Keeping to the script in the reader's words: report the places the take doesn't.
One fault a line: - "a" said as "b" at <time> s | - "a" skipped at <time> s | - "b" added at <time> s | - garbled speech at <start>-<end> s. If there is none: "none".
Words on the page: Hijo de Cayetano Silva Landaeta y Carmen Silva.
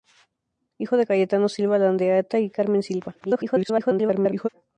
- garbled speech at 3.2-4.5 s